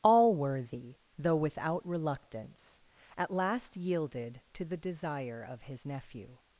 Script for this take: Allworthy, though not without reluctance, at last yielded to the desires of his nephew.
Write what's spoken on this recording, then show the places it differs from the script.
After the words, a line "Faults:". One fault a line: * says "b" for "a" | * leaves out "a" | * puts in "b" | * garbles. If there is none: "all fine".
Allworthy, though without reluctance, at last yielded to the desire of his nephew.
Faults:
* leaves out "not"
* says "desire" for "desires"